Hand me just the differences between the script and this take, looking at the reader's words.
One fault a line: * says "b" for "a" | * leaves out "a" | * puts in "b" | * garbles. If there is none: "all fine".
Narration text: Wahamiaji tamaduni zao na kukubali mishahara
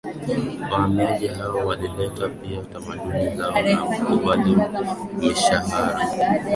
* puts in "hao walileta pia"